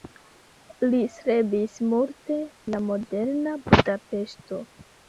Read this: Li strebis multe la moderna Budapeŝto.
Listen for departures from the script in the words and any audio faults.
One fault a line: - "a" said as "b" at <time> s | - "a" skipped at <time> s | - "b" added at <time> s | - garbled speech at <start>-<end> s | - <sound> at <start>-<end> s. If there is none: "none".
none